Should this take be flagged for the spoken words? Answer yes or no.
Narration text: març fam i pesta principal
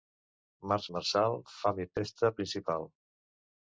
yes